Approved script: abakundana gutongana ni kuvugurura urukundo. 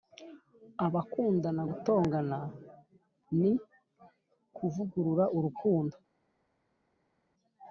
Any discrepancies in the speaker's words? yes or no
no